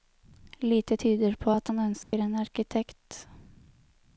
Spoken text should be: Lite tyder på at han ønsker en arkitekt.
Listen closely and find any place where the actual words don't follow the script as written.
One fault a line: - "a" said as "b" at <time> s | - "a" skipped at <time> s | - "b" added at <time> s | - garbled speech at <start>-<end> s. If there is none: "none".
none